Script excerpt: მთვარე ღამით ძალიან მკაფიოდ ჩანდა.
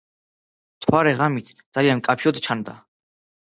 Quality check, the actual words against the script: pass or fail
pass